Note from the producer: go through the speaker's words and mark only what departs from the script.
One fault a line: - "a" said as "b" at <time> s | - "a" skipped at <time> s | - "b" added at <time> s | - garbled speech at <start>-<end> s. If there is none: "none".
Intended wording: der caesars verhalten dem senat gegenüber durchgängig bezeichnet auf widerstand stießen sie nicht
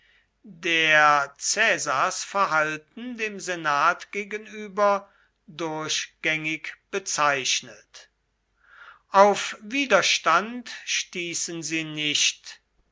none